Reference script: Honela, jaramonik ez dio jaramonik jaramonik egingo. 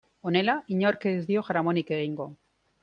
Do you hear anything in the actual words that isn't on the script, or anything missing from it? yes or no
yes